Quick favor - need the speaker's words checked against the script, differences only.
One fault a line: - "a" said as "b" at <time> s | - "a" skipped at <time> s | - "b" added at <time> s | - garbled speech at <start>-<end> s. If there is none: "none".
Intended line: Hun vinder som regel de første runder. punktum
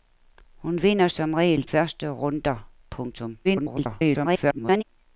- "de" skipped at 1.7 s
- garbled speech at 3.4-4.8 s